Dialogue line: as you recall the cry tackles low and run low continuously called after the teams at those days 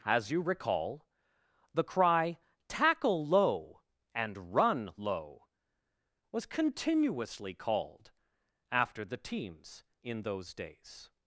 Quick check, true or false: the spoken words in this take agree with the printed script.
false